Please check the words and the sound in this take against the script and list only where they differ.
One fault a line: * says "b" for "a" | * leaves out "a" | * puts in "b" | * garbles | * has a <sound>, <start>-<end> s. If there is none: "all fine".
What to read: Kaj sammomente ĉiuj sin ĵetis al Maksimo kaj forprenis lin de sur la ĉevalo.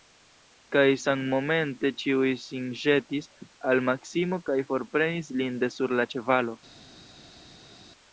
all fine